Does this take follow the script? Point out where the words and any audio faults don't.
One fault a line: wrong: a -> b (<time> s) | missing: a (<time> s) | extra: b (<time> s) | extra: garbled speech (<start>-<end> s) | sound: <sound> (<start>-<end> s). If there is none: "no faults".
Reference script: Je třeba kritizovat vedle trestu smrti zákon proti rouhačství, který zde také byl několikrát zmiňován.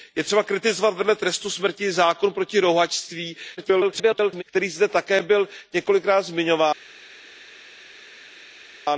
extra: garbled speech (3.6-4.4 s)